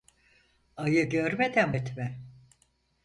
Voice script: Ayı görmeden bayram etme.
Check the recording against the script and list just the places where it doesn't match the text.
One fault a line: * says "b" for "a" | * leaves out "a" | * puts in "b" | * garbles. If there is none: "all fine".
* leaves out "bayram"